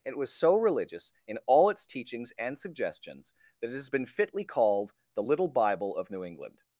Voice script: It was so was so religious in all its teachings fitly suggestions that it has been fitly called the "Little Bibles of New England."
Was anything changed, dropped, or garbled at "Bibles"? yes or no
yes